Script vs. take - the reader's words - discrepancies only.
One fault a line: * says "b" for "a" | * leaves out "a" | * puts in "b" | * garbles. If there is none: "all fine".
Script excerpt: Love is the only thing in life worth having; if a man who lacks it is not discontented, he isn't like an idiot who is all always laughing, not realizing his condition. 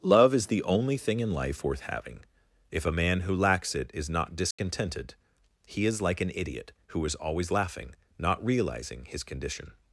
* says "is" for "isn't"
* leaves out "all"